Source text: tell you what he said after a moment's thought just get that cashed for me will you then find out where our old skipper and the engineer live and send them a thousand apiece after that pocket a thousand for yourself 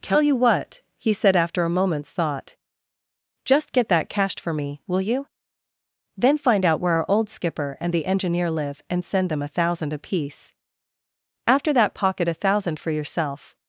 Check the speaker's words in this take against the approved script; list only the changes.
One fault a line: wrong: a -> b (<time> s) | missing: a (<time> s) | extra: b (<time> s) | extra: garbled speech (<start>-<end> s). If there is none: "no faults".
no faults